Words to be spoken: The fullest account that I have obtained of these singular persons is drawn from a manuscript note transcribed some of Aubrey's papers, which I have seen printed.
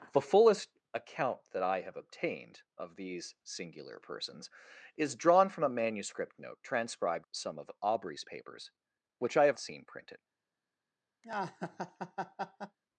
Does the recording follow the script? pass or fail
pass